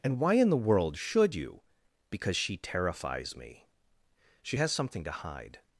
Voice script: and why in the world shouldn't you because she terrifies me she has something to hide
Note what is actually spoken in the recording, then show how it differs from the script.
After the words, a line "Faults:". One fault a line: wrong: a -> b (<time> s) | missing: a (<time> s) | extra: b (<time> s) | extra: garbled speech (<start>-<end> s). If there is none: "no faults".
and why in the world should you because she terrifies me she has something to hide
Faults:
wrong: shouldn't -> should (1.0 s)